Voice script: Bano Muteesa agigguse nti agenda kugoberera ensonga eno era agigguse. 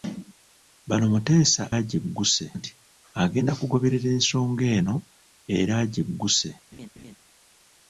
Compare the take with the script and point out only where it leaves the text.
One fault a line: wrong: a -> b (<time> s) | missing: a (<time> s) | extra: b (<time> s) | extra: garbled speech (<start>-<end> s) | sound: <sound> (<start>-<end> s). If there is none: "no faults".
sound: laugh (6.7-7.2 s)